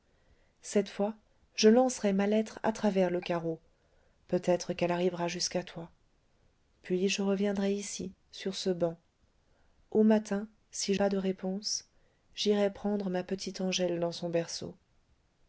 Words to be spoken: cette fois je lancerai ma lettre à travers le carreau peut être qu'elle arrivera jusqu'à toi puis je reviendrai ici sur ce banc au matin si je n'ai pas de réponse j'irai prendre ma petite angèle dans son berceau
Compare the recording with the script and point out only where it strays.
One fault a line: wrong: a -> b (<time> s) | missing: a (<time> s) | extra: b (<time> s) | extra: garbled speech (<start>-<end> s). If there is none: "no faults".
missing: je n'ai (10.9 s)